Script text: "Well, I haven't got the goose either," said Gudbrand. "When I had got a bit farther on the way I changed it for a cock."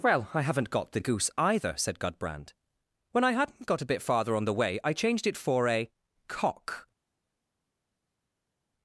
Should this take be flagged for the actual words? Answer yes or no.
yes